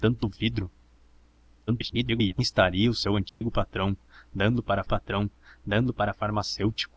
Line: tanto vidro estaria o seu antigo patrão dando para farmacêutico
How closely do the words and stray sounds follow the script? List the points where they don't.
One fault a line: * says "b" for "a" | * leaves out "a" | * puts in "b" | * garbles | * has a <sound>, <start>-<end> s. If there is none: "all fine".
* garbles
* has a dropout, 3.3-3.4 s
* puts in "patrão dando para"